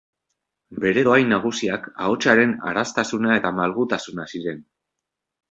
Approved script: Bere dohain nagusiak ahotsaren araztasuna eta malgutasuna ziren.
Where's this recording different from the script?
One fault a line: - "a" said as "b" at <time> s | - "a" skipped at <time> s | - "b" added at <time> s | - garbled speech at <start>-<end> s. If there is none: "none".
none